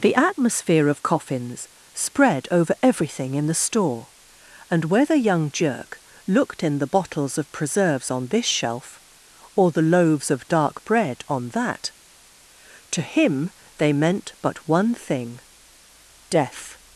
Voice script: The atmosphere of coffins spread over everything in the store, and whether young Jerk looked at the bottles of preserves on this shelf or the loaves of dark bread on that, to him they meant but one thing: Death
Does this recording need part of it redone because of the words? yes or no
yes